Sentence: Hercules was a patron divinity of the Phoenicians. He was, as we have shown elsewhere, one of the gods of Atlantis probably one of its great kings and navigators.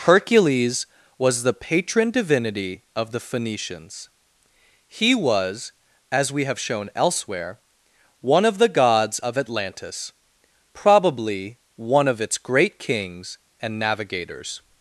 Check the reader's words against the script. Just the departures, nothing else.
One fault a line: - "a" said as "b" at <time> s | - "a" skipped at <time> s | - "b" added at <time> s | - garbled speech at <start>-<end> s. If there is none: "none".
- "a" said as "the" at 1.4 s